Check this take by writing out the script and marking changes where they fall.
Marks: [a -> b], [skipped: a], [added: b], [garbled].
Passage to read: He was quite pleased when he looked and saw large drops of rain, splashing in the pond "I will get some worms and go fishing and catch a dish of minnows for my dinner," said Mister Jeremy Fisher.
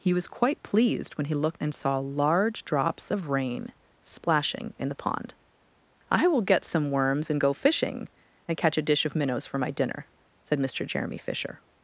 He was quite pleased when he looked and saw large drops of rain, splashing in the pond "I will get some worms and go fishing and catch a dish of minnows for my dinner," said Mister Jeremy Fisher.